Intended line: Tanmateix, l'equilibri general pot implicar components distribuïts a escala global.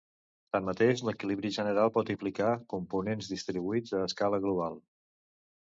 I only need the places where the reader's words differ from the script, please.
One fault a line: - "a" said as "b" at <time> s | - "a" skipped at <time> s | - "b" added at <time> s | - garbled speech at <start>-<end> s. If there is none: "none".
none